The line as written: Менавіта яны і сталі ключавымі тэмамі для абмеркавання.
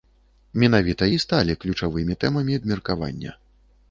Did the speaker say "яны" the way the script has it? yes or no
no